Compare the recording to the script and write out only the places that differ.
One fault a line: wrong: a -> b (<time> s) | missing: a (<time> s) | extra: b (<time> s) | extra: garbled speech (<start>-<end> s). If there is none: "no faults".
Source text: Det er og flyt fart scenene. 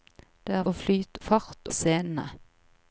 no faults